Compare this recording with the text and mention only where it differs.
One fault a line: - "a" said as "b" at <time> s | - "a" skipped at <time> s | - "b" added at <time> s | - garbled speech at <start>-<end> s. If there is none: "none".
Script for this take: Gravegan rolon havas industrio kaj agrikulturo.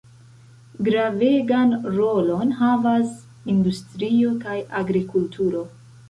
none